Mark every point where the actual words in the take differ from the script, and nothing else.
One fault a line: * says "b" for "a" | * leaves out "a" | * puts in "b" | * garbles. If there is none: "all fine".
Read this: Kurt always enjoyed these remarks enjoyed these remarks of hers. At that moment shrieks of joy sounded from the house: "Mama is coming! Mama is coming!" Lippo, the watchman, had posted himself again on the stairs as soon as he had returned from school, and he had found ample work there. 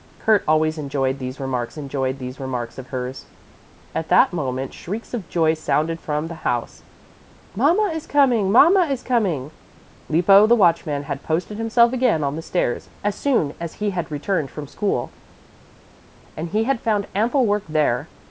all fine